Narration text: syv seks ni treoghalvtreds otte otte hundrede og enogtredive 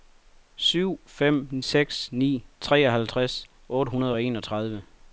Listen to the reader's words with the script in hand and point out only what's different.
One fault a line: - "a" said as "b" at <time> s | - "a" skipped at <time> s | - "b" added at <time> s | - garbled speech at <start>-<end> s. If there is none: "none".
- "fem" added at 1.1 s
- "otte" skipped at 3.9 s